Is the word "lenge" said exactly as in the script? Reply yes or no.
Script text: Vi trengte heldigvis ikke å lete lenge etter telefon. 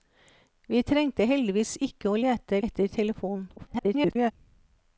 no